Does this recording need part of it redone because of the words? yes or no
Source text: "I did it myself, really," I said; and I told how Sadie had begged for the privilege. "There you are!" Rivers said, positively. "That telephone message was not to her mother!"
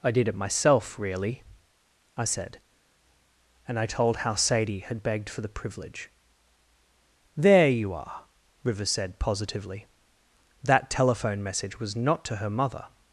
no